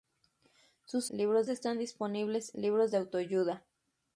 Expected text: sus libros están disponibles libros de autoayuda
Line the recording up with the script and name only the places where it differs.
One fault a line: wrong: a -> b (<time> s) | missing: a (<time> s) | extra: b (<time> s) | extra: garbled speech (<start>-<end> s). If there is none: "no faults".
no faults